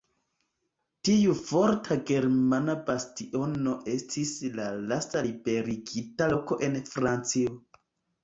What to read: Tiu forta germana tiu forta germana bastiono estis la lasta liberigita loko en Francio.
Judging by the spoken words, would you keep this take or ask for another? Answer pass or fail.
fail